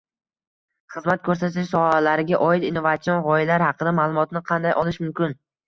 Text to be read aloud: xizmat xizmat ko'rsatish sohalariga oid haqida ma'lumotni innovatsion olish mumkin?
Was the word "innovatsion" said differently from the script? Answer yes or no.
yes